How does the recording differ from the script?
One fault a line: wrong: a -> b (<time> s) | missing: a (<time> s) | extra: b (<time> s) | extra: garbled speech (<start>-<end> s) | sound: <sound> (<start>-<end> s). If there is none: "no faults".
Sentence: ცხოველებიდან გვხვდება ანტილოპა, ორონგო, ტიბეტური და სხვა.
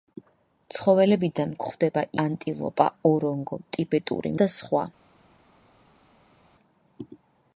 no faults